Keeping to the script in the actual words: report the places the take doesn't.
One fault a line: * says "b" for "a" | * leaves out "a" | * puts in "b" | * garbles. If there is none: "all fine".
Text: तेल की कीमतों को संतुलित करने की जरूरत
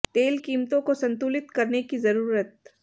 * leaves out "की"